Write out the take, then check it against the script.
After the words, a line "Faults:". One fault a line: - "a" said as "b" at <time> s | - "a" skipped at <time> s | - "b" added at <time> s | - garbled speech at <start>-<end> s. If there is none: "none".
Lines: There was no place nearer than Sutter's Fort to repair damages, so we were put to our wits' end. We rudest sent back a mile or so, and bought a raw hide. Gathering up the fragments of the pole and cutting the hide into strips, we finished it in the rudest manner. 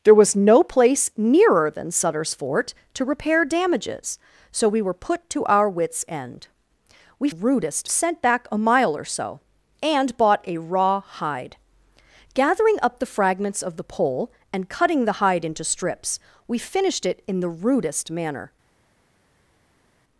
There was no place nearer than Sutter's Fort to repair damages, so we were put to our wits' end. We rudest sent back a mile or so, and bought a raw hide. Gathering up the fragments of the pole and cutting the hide into strips, we finished it in the rudest manner.
Faults:
none